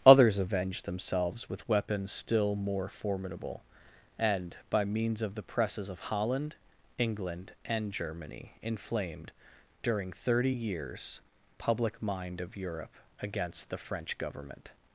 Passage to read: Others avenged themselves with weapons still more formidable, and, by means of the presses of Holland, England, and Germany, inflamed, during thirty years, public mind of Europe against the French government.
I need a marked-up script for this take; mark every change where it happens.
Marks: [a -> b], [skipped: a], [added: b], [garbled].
Others avenged themselves with weapons still more formidable, and, by means of the presses of Holland, England, and Germany, inflamed, during thirty years, public mind of Europe against the French government.